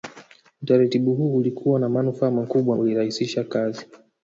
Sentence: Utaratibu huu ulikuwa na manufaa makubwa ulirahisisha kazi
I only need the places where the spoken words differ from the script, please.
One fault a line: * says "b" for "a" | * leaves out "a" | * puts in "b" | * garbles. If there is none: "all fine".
all fine